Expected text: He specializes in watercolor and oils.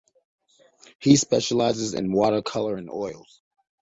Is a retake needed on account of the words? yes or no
no